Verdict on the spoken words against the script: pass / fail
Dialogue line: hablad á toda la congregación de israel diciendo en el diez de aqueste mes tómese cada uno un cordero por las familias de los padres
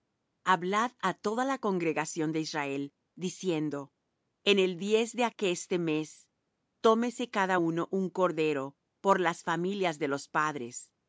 pass